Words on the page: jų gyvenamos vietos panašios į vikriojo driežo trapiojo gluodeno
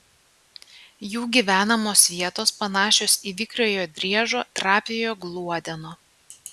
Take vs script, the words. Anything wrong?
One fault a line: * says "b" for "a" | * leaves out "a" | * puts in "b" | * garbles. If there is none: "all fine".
all fine